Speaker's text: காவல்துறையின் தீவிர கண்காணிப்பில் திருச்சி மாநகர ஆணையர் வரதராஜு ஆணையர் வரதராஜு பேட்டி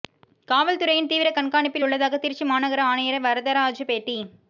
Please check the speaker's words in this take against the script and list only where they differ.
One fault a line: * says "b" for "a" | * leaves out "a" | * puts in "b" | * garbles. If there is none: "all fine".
* puts in "உள்ளதாக"
* leaves out "ஆணையர் வரதராஜு"